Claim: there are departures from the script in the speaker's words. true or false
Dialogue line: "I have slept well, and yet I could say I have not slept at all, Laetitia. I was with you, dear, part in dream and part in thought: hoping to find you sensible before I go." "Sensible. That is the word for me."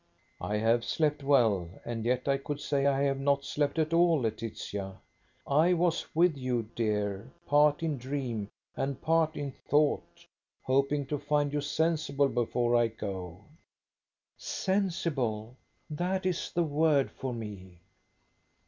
false